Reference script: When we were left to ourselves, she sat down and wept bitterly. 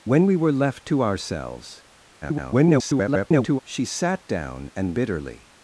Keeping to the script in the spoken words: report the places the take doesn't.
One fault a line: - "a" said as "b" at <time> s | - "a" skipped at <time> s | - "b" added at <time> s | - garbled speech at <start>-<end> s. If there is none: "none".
- garbled speech at 2.2-3.6 s
- "wept" skipped at 5.0 s